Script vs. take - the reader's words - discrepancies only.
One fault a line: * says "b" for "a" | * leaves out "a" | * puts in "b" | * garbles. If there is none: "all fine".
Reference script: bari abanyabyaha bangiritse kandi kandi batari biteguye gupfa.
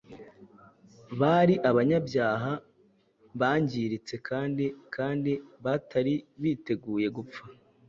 all fine